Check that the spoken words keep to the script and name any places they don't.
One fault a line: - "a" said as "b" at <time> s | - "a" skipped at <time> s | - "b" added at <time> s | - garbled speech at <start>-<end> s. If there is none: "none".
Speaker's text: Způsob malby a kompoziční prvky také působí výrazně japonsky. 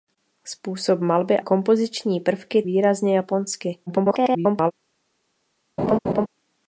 - "a" skipped at 1.4 s
- "také působí" skipped at 2.6 s
- garbled speech at 3.9-4.7 s